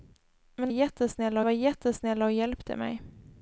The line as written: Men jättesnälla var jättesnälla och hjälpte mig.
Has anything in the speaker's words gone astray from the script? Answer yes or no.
no